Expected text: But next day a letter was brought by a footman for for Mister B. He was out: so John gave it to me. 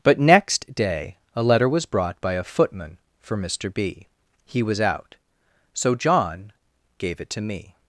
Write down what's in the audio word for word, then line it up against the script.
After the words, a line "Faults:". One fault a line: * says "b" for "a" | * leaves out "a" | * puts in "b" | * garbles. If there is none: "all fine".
But next day a letter was brought by a footman for Mister B. He was out: so John gave it to me.
Faults:
* leaves out "for"